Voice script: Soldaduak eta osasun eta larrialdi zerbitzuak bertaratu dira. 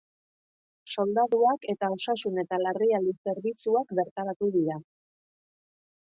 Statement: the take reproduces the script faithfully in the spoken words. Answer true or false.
true